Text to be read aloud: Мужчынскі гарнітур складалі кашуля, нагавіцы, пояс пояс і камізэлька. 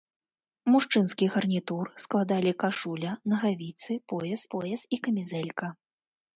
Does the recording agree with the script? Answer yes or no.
yes